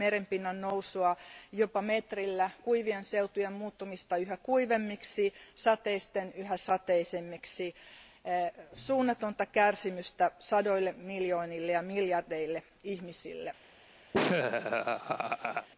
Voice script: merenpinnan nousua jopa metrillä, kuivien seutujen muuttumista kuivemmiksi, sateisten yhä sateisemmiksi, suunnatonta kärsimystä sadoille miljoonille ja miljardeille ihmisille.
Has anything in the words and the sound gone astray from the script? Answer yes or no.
yes